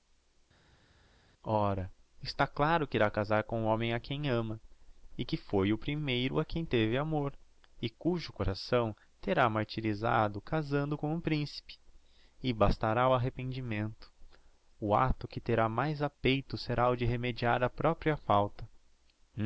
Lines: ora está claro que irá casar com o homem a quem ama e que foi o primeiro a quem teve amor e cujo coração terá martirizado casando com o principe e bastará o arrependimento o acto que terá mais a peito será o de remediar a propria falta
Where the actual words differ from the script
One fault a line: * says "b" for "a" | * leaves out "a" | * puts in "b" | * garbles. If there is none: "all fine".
all fine